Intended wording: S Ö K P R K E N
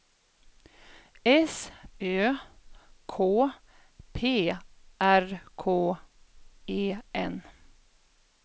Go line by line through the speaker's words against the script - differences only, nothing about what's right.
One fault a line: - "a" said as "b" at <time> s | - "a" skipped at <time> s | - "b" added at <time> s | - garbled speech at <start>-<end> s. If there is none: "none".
none